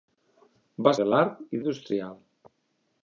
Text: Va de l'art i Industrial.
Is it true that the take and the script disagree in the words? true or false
false